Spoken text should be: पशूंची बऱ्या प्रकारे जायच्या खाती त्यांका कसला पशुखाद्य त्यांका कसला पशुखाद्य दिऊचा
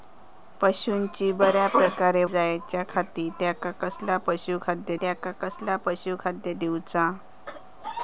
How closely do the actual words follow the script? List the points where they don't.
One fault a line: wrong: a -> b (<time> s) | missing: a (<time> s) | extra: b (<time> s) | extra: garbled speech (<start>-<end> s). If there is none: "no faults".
no faults